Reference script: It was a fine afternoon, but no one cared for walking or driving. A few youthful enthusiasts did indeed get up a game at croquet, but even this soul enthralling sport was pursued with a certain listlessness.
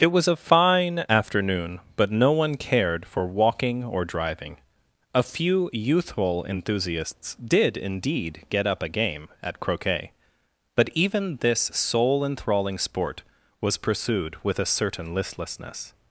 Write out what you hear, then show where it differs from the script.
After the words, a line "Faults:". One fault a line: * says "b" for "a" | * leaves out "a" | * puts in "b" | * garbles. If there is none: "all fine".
It was a fine afternoon, but no one cared for walking or driving. A few youthful enthusiasts did indeed get up a game at croquet, but even this soul enthralling sport was pursued with a certain listlessness.
Faults:
all fine